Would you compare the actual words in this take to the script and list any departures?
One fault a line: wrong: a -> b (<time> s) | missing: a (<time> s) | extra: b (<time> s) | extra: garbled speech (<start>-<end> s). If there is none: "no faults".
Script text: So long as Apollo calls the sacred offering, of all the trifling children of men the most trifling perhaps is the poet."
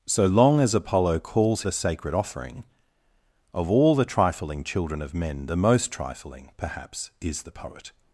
no faults